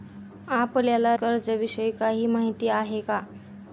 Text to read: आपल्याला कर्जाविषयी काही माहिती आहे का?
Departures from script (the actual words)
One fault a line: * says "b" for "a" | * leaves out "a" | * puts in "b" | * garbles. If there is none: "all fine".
all fine